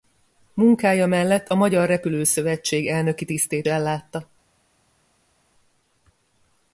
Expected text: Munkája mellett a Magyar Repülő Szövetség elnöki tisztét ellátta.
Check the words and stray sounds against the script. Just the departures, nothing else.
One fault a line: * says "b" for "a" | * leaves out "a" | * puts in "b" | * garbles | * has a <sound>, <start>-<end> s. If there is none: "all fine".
all fine